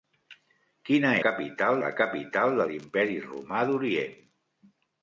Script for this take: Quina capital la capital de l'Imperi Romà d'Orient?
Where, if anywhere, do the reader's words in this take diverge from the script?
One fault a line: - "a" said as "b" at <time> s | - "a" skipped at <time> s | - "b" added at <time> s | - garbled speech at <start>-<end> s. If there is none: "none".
none